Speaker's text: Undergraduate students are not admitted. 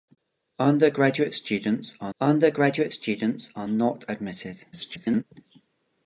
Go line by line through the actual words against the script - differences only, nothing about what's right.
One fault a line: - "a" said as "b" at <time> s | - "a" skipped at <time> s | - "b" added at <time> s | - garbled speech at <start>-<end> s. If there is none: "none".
- "undergraduate students are" added at 2.2 s
- garbled speech at 4.7-5.2 s